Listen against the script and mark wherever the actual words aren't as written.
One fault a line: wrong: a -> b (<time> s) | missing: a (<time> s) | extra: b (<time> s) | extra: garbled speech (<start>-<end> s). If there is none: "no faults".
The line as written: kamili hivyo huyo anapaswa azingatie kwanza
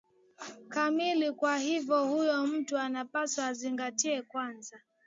extra: kwa (1.3 s)
extra: mtu (2.5 s)